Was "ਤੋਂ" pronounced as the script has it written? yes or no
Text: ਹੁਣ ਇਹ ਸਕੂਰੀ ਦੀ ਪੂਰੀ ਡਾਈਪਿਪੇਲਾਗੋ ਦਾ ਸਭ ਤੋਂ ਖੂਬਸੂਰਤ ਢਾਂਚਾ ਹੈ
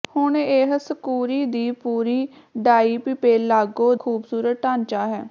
no